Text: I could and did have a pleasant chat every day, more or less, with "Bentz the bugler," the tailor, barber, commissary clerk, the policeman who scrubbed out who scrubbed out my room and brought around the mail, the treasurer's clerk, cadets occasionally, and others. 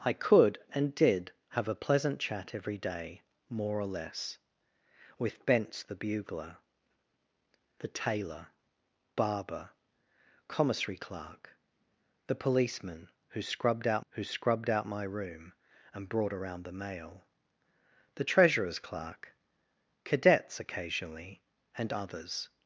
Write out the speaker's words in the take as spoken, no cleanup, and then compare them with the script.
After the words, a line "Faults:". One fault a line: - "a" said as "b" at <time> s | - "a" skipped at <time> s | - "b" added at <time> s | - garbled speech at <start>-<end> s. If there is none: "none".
I could and did have a pleasant chat every day, more or less, with "Bentz the bugler," the tailor, barber, commissary clerk, the policeman who scrubbed out who scrubbed out my room and brought around the mail, the treasurer's clerk, cadets occasionally, and others.
Faults:
none